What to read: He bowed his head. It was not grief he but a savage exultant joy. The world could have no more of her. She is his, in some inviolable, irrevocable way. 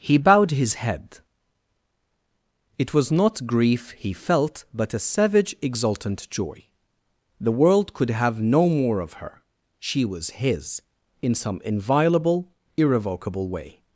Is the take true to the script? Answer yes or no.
no